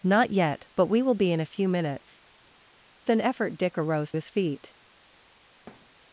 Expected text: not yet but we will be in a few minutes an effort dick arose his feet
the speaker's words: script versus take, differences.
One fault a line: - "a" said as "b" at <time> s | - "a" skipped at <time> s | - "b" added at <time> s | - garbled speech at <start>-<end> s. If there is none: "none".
none